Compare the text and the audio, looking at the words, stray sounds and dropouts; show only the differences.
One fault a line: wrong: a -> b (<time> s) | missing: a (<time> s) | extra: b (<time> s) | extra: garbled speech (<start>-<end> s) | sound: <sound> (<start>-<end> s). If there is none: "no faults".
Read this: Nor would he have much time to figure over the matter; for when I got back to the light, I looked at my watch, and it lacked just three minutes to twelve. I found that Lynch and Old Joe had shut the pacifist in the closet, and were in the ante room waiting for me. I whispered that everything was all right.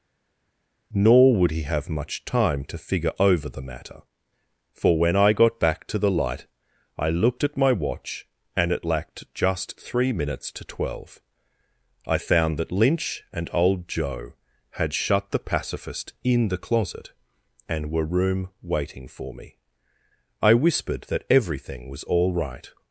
missing: in the ante (18.0 s)